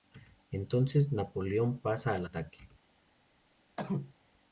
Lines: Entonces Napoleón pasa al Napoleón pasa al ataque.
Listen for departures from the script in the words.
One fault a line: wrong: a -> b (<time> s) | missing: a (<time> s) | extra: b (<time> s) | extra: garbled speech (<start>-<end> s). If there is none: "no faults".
missing: Napoleón pasa al (2.2 s)